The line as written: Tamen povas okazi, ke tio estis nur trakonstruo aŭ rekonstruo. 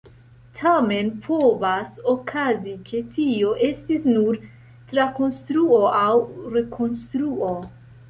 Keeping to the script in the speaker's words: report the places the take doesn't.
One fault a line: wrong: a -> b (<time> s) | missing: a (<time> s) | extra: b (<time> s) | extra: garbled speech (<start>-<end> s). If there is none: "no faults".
no faults